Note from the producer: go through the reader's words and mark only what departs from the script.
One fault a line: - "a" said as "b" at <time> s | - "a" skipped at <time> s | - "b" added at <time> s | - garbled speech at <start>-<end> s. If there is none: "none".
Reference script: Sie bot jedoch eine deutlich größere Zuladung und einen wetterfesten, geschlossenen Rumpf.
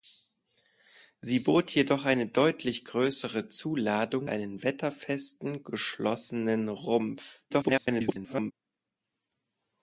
- "und" skipped at 4.3 s
- garbled speech at 7.5-8.5 s